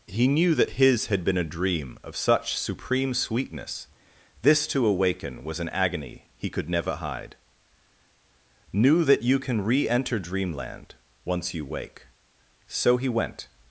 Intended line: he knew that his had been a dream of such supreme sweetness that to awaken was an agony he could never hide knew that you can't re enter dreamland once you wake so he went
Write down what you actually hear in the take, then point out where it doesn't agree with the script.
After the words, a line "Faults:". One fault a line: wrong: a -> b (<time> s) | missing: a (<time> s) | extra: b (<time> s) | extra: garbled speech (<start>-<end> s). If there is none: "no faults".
he knew that his had been a dream of such supreme sweetness this to awaken was an agony he could never hide knew that you can re enter dreamland once you wake so he went
Faults:
wrong: that -> this (4.4 s)
wrong: can't -> can (9.4 s)